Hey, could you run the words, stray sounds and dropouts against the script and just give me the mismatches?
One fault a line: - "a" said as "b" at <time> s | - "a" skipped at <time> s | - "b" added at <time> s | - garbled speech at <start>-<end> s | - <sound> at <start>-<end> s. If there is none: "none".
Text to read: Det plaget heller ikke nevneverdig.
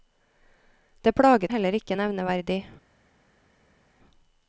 none